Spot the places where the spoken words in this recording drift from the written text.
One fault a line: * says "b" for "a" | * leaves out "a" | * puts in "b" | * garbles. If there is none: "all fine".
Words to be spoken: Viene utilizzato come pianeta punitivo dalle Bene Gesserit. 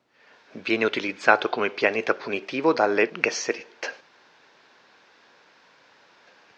* leaves out "Bene"